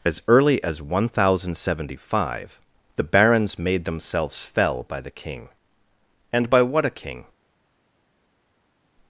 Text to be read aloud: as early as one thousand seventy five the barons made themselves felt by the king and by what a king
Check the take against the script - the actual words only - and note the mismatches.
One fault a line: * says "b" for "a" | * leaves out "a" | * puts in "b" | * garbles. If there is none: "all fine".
* says "fell" for "felt"